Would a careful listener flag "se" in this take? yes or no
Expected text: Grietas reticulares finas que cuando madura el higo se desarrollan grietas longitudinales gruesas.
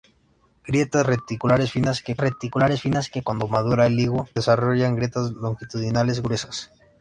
yes